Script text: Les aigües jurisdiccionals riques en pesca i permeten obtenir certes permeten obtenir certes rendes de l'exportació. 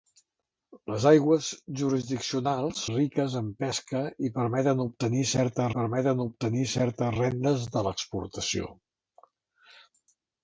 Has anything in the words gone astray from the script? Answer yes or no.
no